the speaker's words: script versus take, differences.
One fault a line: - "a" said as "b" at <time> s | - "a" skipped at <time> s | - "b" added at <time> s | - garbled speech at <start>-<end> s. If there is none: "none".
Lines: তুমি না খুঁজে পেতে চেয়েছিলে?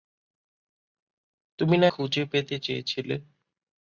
none